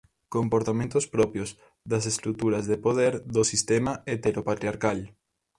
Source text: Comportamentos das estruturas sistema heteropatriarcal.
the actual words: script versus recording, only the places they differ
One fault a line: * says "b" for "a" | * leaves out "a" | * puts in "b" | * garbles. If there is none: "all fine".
* puts in "propios"
* puts in "de poder do"